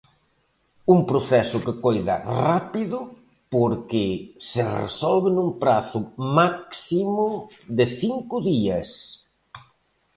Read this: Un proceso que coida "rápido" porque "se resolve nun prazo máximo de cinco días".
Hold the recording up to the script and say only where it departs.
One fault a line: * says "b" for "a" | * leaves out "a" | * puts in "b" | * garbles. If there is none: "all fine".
all fine